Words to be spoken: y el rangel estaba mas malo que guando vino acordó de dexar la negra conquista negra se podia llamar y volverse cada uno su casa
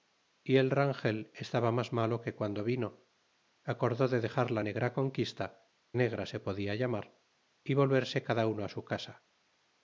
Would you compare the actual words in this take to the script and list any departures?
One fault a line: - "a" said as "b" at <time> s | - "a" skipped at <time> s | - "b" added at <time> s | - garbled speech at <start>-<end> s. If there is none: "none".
none